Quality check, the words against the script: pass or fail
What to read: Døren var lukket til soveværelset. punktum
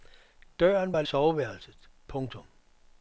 fail